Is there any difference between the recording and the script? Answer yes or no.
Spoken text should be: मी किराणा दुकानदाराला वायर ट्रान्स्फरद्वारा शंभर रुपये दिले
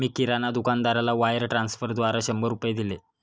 no